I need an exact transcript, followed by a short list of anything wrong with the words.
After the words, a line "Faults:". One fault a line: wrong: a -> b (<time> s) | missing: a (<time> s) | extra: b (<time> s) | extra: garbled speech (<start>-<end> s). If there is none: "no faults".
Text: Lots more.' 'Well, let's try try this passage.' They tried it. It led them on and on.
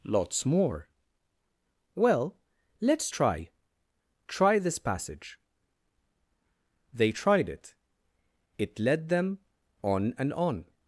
Lots more.' 'Well, let's try try this passage.' They tried it. It led them on and on.
Faults:
no faults